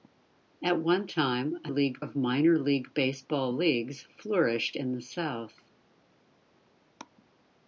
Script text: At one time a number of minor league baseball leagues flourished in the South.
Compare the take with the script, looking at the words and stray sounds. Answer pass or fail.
fail